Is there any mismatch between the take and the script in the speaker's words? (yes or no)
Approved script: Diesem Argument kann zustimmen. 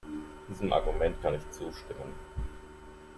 yes